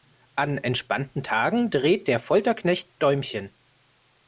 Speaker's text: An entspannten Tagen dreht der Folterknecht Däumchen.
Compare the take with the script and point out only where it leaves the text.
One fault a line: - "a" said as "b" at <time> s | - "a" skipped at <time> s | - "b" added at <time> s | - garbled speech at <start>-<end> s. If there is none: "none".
none